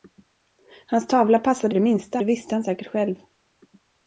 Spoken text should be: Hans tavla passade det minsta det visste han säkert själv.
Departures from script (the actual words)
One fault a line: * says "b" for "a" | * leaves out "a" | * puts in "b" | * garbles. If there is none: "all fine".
all fine